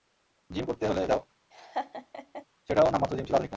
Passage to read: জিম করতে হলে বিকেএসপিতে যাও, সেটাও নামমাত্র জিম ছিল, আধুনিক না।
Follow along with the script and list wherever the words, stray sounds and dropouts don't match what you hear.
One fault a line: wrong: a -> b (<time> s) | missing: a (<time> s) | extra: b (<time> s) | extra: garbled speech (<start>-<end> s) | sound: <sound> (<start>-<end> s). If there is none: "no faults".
missing: বিকেএসপিতে (1.0 s)
sound: laugh (1.5-2.5 s)